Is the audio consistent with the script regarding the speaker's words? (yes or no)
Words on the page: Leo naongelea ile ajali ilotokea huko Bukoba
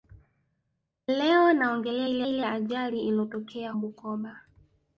no